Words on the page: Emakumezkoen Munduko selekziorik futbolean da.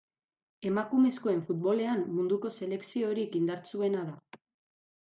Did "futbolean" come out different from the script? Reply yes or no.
yes